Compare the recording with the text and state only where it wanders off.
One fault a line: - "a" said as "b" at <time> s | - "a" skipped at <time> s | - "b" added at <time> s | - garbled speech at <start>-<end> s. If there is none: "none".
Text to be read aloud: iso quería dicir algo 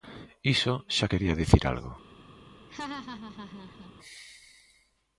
- "xa" added at 1.0 s